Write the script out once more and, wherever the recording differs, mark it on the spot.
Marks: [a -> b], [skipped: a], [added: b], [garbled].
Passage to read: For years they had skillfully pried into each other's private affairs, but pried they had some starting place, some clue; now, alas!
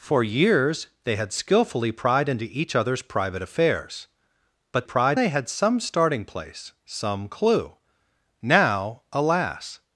For years they had skillfully pried into each other's private affairs, but pried they had some starting place, some clue; now, alas!